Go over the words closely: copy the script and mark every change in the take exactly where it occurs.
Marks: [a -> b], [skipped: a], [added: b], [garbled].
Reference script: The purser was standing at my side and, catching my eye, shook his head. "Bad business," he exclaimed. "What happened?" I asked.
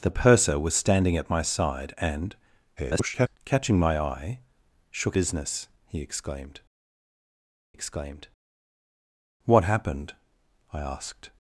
The purser was standing at my side and, [garbled] catching my eye, shook [skipped: his head. "Bad] business," he exclaimed. [added: exclaimed] "What happened?" I asked.